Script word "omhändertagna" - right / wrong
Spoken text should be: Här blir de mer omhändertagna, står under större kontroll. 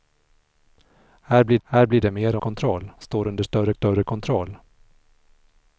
wrong